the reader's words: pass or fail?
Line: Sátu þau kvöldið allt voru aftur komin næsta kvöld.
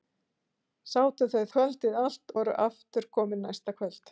pass